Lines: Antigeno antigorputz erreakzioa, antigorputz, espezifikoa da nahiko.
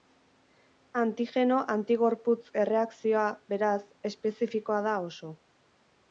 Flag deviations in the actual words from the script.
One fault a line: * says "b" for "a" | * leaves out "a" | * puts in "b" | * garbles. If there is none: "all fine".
* says "beraz" for "antigorputz"
* says "oso" for "nahiko"